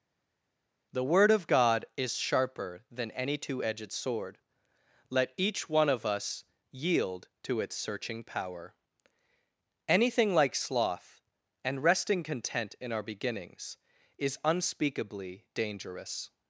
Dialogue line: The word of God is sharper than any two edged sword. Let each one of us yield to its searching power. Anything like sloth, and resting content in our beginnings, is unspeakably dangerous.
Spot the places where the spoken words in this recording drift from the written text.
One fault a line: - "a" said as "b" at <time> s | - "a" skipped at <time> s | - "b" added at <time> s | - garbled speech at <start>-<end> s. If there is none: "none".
none